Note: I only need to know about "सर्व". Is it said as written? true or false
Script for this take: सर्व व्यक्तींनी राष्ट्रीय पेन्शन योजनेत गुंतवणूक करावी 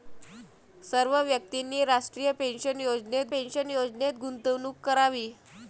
true